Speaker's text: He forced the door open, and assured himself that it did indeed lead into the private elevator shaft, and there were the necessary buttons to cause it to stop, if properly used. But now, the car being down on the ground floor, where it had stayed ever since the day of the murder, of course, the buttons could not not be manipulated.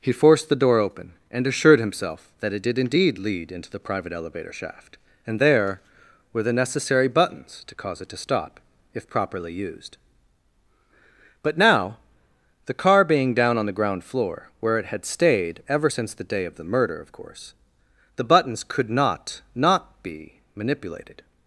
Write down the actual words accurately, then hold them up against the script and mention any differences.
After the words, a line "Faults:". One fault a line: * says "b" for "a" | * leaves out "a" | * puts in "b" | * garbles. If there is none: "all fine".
He forced the door open, and assured himself that it did indeed lead into the private elevator shaft, and there were the necessary buttons to cause it to stop, if properly used. But now, the car being down on the ground floor, where it had stayed ever since the day of the murder, of course, the buttons could not not be manipulated.
Faults:
all fine